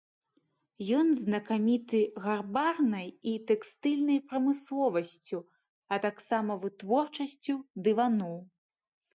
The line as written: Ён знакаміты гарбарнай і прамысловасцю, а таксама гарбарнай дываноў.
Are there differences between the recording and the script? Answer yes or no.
yes